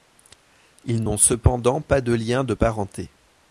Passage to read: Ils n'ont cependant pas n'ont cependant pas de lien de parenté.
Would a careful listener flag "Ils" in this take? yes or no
no